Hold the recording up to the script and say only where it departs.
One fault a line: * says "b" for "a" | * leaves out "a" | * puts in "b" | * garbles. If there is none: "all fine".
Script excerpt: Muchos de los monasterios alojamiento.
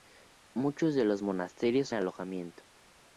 all fine